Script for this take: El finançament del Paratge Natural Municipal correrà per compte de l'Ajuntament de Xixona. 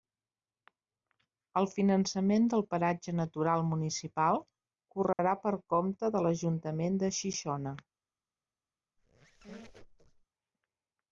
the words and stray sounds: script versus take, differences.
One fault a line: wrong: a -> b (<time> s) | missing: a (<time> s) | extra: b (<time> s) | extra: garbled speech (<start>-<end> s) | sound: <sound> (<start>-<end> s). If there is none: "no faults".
sound: dropout (5.1-5.2 s)
sound: squeak (9.0-10.3 s)